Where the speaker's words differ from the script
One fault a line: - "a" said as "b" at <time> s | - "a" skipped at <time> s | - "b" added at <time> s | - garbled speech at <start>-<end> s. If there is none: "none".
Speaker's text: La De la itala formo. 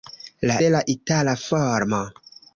none